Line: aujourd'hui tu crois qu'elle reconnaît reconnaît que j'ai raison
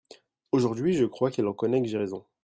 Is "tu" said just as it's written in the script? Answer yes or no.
no